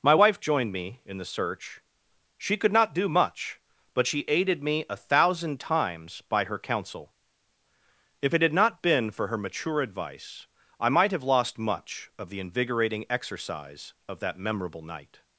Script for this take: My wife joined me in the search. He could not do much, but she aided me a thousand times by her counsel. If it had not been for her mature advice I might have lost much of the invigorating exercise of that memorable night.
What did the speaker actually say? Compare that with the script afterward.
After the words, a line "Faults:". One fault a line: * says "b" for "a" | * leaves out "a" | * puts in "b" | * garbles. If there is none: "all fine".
My wife joined me in the search. She could not do much, but she aided me a thousand times by her counsel. If it had not been for her mature advice I might have lost much of the invigorating exercise of that memorable night.
Faults:
* says "She" for "He"